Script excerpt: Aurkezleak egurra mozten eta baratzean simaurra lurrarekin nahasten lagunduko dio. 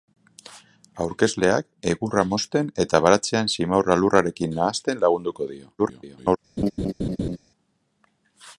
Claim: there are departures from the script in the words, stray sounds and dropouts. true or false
true